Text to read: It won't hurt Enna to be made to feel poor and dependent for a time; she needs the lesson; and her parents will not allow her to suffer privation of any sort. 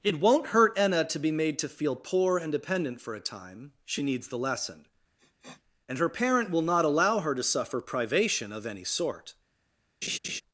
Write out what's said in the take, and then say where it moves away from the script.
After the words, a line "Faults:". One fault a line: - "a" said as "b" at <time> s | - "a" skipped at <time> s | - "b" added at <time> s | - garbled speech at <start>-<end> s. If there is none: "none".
It won't hurt Enna to be made to feel poor and dependent for a time; she needs the lesson; and her parent will not allow her to suffer privation of any sort.
Faults:
- "parents" said as "parent" at 6.1 s